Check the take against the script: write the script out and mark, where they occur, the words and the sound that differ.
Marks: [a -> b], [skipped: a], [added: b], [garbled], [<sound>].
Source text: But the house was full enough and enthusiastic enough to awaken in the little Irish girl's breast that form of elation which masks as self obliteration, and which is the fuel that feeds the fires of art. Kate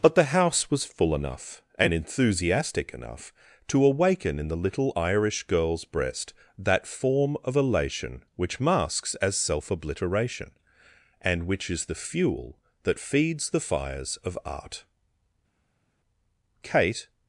But the house was full enough and enthusiastic enough to awaken in the little Irish girl's breast that form of elation which masks as self obliteration, and which is the fuel that feeds the fires of art. Kate